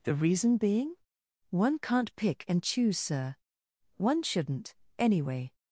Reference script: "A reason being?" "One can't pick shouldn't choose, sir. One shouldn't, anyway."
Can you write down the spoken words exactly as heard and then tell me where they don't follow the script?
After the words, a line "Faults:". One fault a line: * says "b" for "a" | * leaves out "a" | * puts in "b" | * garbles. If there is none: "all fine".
"The reason being?" "One can't pick and choose, sir. One shouldn't, anyway."
Faults:
* says "The" for "A"
* says "and" for "shouldn't"